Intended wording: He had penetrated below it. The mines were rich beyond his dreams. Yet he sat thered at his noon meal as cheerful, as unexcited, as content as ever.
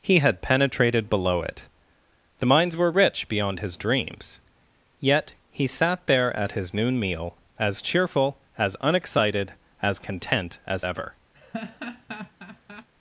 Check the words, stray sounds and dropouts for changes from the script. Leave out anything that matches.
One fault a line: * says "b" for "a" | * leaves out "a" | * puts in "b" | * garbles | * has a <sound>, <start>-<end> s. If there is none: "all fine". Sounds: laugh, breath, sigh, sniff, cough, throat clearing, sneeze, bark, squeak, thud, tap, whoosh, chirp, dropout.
* says "there" for "thered"
* has a laugh, 11.3-12.9 s